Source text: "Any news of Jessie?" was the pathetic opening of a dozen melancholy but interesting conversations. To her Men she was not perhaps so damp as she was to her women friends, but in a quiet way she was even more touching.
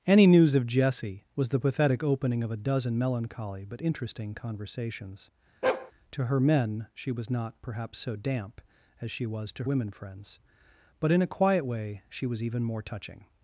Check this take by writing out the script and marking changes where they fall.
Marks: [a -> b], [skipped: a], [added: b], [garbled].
"Any news of Jessie?" was the pathetic opening of a dozen melancholy but interesting conversations. To her Men she was not perhaps so damp as she was to [skipped: her] women friends, but in a quiet way she was even more touching.